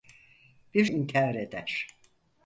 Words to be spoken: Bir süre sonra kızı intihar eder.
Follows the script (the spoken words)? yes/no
no